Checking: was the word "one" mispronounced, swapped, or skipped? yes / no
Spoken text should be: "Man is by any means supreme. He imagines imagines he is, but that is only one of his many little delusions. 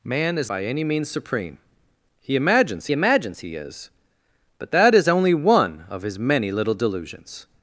no